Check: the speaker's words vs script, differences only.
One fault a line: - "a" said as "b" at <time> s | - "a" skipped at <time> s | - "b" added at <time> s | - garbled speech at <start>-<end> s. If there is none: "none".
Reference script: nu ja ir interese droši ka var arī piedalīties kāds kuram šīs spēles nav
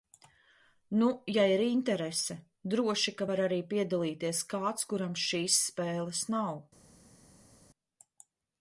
none